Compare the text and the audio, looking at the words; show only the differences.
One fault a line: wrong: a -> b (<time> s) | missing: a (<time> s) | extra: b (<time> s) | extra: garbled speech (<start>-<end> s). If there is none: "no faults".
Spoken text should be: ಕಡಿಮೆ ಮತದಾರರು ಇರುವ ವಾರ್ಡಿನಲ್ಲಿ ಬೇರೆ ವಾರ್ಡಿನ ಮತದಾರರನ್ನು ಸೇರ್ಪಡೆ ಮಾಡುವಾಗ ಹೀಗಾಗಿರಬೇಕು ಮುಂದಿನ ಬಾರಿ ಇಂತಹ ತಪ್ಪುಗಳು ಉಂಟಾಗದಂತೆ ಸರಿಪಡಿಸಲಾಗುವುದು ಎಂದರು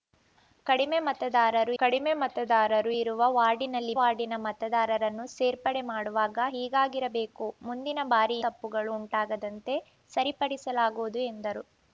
extra: ಕಡಿಮೆ ಮತದಾರರು (1.8 s)
missing: ಬೇರೆ (3.9 s)
missing: ಇಂತಹ (8.4 s)